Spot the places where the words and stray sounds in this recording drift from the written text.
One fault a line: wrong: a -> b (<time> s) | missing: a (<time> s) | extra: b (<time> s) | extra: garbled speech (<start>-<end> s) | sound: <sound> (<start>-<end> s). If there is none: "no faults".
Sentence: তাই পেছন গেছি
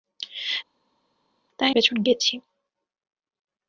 no faults